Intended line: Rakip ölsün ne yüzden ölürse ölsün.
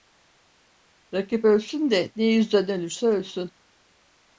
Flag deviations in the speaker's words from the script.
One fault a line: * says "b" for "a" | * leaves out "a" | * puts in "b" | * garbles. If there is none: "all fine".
* puts in "de"